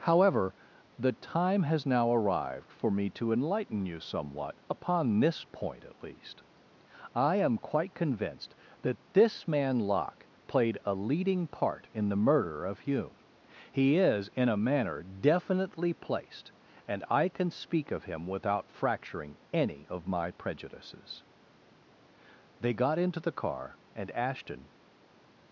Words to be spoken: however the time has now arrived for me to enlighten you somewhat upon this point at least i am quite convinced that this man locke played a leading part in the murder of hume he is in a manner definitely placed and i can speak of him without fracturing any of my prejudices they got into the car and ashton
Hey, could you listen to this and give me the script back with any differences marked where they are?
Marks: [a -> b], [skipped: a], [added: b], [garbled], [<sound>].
however the time has now arrived for me to enlighten you somewhat upon this point at least i am quite convinced that this man locke played a leading part in the murder of hume he is in a manner definitely placed and i can speak of him without fracturing any of my prejudices they got into the car and ashton